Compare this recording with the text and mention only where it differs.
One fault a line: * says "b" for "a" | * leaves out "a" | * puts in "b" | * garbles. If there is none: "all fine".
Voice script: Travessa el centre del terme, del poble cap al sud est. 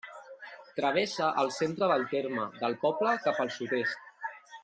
all fine